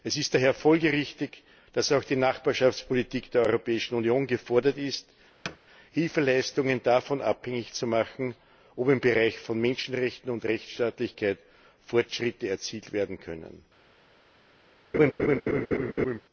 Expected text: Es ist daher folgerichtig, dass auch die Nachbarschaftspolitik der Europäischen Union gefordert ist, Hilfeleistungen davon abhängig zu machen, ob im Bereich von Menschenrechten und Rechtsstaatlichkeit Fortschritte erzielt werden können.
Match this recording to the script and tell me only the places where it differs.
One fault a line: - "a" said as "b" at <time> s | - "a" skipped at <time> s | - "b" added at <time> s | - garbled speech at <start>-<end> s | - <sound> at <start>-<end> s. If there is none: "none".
- thud at 5.4-5.6 s
- laugh at 14.9-16.2 s